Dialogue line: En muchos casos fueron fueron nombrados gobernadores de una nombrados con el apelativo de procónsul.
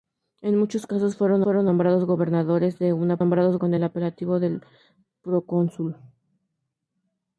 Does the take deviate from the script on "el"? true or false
false